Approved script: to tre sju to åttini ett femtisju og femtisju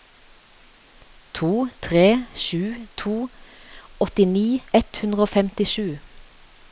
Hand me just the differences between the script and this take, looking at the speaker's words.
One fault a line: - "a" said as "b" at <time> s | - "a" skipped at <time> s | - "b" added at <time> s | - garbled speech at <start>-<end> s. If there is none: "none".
- "femtisju" said as "hundre" at 5.0 s